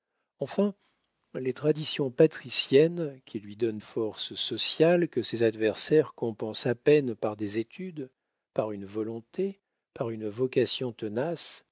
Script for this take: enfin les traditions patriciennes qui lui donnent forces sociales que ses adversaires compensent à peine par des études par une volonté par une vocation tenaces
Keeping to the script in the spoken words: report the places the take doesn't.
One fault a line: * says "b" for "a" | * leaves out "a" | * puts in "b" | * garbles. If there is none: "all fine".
all fine